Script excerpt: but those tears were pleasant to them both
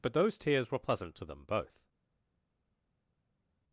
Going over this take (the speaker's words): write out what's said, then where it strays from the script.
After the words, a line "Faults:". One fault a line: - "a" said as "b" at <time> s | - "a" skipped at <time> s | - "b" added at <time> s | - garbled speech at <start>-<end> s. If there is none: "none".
but those tears were pleasant to them both
Faults:
none